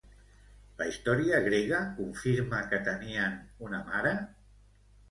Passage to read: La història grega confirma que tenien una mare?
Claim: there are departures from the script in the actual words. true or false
false